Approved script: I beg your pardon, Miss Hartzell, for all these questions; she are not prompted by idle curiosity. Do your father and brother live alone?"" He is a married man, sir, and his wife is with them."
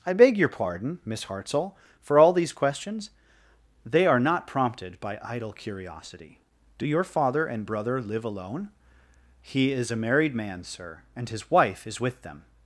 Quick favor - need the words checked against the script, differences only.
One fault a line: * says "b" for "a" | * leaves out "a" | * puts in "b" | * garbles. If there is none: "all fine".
* says "they" for "she"